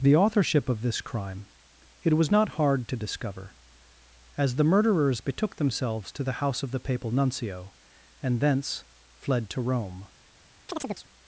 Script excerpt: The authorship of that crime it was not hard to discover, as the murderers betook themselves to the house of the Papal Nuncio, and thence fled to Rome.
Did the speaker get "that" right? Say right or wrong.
wrong